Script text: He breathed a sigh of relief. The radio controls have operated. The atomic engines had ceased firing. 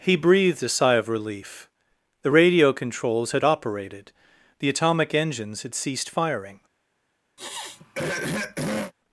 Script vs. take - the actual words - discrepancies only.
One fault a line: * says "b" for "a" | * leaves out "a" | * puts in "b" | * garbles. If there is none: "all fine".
* says "had" for "have"